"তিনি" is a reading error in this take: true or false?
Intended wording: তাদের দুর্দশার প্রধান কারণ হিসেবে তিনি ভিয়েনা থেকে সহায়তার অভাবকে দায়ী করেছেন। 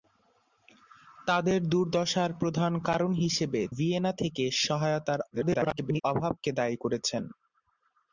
true